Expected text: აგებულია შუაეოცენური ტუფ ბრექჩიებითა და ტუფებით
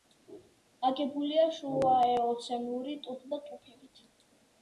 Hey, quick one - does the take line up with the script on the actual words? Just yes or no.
no